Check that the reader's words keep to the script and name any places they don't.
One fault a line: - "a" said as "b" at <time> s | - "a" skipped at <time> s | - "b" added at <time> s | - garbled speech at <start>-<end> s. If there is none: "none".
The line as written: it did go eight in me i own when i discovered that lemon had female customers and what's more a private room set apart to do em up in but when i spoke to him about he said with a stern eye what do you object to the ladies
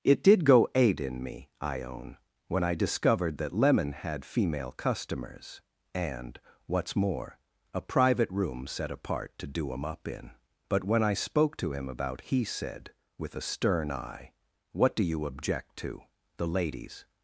none